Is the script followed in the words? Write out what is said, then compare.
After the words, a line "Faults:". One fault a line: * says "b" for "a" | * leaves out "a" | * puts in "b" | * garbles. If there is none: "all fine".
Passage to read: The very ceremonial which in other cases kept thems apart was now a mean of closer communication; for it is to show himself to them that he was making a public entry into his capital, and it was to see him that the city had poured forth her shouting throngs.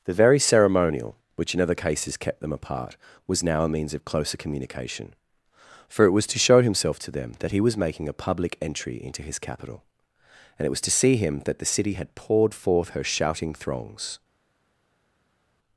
The very ceremonial which in other cases kept them apart was now a means of closer communication; for it was to show himself to them that he was making a public entry into his capital, and it was to see him that the city had poured forth her shouting throngs.
Faults:
* says "them" for "thems"
* says "means" for "mean"
* says "was" for "is"